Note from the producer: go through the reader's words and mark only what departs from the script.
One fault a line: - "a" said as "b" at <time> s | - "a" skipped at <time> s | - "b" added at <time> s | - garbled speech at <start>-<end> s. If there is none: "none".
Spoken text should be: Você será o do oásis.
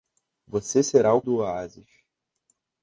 none